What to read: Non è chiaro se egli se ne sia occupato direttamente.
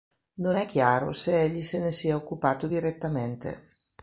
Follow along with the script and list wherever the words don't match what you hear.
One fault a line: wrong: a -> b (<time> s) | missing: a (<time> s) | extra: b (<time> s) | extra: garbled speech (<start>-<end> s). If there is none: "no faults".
no faults